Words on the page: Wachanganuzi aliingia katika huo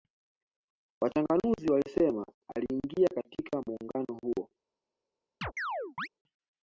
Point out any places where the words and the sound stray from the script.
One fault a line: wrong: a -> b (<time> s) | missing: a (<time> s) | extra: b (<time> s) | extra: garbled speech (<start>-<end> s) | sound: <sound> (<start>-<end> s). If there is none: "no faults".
extra: walisema (1.7 s)
extra: muungano (3.7 s)
sound: chirp (5.4-6.1 s)